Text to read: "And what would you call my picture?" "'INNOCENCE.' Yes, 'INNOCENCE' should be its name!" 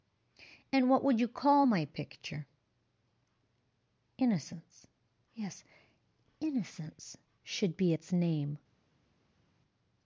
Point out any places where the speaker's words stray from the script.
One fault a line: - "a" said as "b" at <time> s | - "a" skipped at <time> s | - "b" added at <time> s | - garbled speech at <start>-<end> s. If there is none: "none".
none